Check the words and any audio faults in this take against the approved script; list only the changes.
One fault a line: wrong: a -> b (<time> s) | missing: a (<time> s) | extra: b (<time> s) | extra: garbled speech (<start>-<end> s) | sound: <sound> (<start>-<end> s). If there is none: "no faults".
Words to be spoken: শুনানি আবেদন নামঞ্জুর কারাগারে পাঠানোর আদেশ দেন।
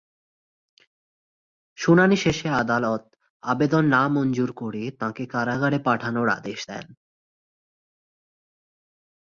extra: শেষে আদালত (2.2 s)
extra: করে তাঁকে (4.5 s)